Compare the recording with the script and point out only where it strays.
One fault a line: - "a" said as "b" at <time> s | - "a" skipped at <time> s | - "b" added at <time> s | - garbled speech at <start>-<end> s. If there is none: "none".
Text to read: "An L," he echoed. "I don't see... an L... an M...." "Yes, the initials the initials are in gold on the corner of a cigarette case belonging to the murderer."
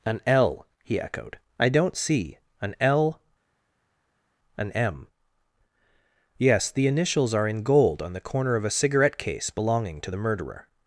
- "the initials" skipped at 7.3 s